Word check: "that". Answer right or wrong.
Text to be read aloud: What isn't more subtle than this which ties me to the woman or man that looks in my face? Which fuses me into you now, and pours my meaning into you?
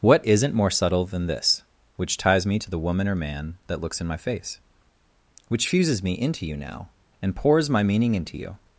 right